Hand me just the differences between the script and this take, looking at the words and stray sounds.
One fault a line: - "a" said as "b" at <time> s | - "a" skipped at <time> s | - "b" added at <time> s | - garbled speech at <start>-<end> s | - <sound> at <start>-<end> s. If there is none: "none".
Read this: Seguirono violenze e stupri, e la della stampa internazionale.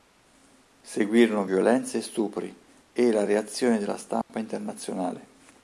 - "reazione" added at 3.2 s
- dropout at 4.2-4.3 s